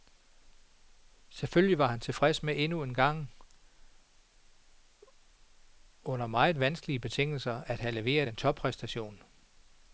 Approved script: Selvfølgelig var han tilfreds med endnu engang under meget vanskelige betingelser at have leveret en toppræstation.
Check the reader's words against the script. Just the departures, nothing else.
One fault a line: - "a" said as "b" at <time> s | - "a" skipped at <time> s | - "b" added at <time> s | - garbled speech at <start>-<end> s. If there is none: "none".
none